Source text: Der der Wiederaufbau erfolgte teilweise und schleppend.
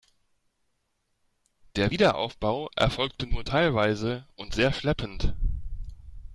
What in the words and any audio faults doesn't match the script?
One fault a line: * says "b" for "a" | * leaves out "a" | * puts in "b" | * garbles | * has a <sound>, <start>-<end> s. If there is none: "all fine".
* leaves out "der"
* puts in "nur"
* puts in "sehr"